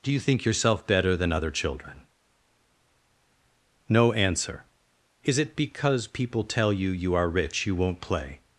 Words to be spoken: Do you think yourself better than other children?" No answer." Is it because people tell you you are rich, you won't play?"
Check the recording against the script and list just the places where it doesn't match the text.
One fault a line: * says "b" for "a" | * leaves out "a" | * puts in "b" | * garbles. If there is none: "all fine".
all fine